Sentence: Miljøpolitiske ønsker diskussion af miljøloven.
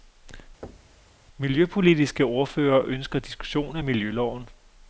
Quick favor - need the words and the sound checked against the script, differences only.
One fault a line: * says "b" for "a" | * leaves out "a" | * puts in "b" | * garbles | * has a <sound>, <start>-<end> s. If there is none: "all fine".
* has a thud, 0.6-1.1 s
* puts in "ordførere"